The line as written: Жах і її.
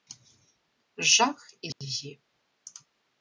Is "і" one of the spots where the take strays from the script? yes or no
no